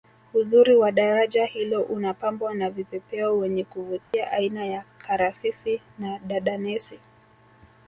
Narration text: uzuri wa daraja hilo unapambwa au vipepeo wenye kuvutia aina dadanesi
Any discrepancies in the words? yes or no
yes